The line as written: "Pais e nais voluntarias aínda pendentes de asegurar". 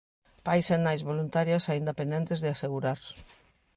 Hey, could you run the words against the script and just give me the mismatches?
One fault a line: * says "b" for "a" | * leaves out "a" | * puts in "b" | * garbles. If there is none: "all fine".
all fine